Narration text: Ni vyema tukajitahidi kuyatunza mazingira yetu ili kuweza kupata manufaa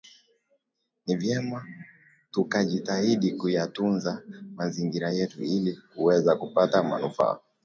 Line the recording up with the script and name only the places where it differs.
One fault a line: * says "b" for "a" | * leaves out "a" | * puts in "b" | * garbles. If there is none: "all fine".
all fine